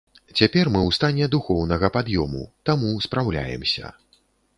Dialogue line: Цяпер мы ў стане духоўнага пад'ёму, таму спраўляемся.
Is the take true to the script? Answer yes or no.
yes